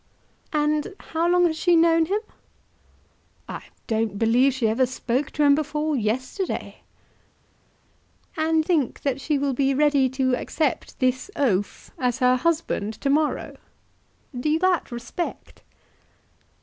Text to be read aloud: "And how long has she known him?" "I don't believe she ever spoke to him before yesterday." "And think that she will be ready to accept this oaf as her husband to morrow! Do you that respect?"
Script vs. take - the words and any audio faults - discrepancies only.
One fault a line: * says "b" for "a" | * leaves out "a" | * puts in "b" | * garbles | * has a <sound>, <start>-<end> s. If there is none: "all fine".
all fine